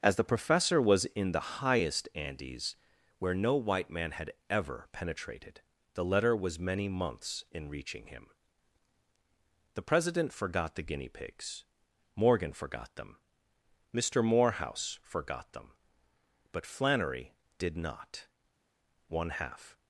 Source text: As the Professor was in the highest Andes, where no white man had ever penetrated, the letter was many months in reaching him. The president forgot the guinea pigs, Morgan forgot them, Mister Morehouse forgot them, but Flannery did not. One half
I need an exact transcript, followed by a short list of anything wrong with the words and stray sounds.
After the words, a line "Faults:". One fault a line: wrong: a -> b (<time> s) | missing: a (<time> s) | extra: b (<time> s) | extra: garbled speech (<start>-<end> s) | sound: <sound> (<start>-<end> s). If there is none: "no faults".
As the Professor was in the highest Andes, where no white man had ever penetrated, the letter was many months in reaching him. The president forgot the guinea pigs, Morgan forgot them, Mister Morehouse forgot them, but Flannery did not. One half
Faults:
no faults